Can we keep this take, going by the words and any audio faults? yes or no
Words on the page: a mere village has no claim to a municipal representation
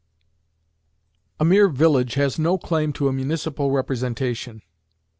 yes